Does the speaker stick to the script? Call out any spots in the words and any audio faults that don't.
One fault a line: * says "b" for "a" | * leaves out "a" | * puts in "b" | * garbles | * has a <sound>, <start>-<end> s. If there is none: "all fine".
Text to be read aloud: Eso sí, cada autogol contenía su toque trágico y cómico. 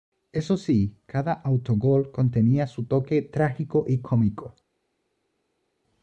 all fine